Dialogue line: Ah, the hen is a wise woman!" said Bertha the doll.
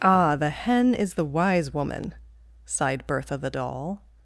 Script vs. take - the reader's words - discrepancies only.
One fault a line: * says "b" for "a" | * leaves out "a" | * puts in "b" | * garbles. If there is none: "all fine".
* says "the" for "a"
* says "sighed" for "said"